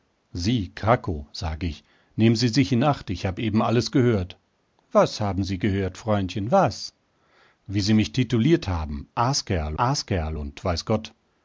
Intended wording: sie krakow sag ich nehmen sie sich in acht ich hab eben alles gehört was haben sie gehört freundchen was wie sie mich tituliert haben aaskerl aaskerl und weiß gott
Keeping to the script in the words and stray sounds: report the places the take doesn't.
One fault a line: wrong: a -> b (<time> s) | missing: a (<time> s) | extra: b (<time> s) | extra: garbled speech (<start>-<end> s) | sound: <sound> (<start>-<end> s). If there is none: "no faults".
no faults